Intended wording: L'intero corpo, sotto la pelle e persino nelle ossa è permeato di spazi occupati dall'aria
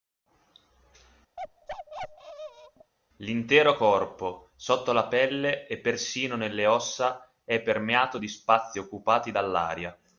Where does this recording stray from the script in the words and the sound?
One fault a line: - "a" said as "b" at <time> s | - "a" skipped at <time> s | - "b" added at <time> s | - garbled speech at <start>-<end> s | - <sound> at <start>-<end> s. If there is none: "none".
- bark at 1.4-2.9 s